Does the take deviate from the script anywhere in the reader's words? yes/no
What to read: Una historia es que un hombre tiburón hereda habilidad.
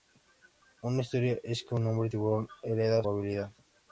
no